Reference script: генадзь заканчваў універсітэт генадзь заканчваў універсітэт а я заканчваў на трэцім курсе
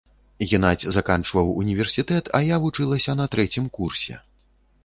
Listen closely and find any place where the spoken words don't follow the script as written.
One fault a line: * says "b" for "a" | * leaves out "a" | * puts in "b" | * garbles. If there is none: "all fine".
* leaves out "генадзь заканчваў універсітэт"
* says "вучылася" for "заканчваў"